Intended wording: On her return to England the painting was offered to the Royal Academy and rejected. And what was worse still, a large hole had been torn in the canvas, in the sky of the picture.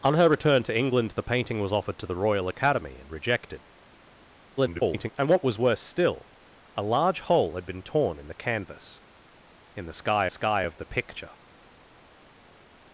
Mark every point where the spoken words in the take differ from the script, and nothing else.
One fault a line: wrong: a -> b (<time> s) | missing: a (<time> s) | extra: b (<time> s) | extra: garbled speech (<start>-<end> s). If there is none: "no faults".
extra: garbled speech (4.6-5.1 s)
extra: sky (10.3 s)